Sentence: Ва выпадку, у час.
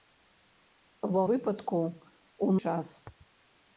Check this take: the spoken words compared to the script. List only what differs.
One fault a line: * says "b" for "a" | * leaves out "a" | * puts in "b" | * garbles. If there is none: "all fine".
all fine